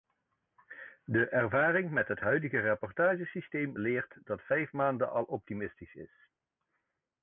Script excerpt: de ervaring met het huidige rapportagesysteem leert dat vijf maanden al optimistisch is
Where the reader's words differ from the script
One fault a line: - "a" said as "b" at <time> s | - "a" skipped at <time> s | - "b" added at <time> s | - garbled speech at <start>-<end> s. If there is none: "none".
none